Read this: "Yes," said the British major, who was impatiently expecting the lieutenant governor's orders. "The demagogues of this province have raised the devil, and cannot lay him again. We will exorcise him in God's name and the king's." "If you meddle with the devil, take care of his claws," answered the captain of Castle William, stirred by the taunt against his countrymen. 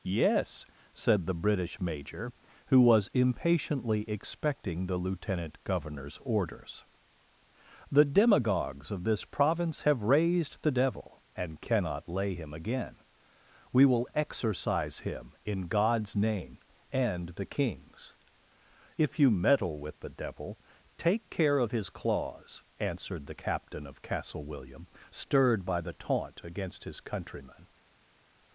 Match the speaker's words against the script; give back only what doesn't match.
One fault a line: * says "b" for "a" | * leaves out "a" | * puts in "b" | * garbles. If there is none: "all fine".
all fine